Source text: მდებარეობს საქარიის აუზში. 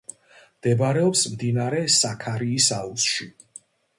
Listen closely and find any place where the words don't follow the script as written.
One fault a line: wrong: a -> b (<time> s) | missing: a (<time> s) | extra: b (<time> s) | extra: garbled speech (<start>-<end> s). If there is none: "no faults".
extra: მდინარე (1.3 s)